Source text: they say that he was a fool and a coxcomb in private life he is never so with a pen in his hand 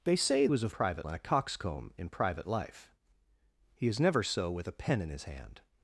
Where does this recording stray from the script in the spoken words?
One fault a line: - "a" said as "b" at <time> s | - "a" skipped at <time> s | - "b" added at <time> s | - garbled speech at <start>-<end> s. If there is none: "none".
- "that he" skipped at 0.5 s
- "fool" said as "private" at 0.7 s